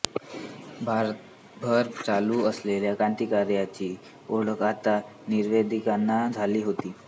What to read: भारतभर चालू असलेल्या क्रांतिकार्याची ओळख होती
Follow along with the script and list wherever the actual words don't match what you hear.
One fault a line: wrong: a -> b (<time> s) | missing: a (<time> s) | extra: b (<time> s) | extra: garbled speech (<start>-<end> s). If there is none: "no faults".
extra: आता निवेदितांना झाली (4.6 s)